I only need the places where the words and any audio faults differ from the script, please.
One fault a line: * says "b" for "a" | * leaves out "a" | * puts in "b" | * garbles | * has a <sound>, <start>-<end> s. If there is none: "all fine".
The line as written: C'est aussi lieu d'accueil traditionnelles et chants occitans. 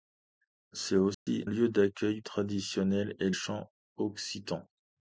* has a dropout, 1.1-1.3 s